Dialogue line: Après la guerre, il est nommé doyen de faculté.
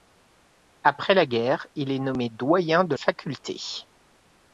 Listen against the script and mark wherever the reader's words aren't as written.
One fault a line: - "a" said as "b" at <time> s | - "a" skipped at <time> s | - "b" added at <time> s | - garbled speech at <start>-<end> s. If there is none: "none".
none